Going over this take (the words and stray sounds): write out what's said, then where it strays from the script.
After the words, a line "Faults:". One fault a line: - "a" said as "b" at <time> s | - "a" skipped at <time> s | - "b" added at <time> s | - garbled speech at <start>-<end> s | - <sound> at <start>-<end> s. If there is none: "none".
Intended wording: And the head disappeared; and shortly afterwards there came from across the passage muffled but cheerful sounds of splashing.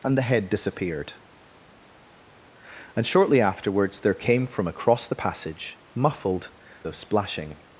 And the head disappeared; and shortly afterwards there came from across the passage muffled of splashing.
Faults:
- "but cheerful sounds" skipped at 6.5 s